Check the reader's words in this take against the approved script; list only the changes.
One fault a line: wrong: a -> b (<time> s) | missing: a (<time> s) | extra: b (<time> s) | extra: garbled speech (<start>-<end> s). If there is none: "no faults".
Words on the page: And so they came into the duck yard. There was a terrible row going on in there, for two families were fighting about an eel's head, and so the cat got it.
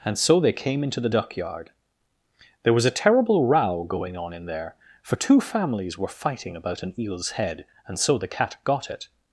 no faults